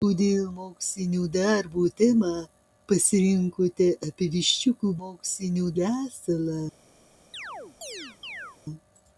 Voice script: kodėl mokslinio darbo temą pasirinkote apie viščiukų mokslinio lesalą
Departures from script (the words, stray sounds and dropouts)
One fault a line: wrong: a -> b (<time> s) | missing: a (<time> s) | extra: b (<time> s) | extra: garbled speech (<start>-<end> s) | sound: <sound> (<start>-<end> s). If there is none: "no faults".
sound: chirp (7.3-8.6 s)